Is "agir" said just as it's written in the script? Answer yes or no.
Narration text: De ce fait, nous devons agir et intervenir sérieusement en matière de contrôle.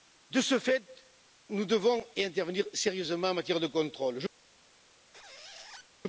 no